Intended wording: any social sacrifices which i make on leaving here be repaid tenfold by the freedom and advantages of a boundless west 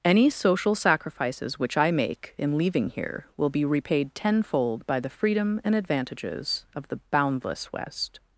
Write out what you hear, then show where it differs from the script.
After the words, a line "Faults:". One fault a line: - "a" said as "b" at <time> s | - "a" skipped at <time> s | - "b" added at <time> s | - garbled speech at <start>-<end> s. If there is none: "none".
any social sacrifices which i make in leaving here will be repaid tenfold by the freedom and advantages of the boundless west
Faults:
- "on" said as "in" at 2.4 s
- "will" added at 3.4 s
- "a" said as "the" at 6.9 s